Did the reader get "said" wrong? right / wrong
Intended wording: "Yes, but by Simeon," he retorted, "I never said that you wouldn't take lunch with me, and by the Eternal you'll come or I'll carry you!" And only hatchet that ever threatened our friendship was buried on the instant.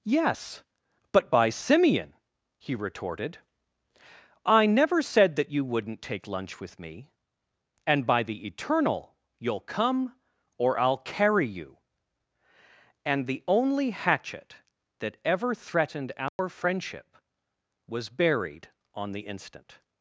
right